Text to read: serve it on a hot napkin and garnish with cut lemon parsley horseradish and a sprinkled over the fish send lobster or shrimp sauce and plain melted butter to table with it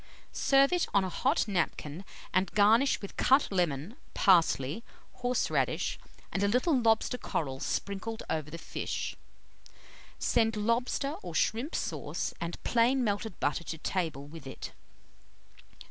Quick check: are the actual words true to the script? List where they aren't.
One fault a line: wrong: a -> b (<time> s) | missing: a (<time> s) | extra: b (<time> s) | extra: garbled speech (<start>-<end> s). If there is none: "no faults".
extra: little lobster coral (6.5 s)